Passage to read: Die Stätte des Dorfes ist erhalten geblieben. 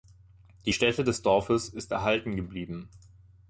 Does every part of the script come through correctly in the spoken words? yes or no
yes